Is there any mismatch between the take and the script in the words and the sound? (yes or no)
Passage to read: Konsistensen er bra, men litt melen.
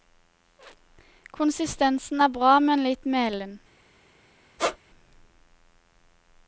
yes